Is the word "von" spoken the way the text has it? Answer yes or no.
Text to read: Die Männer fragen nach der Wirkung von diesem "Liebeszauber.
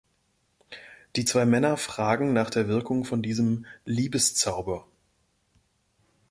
yes